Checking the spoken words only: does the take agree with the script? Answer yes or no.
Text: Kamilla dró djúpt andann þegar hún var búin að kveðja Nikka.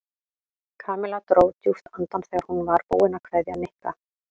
yes